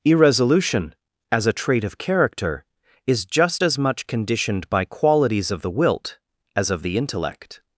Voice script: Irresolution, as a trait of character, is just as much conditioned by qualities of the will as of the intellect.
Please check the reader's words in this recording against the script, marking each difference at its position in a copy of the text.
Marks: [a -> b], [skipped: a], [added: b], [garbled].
Irresolution, as a trait of character, is just as much conditioned by qualities of the [will -> wilt] as of the intellect.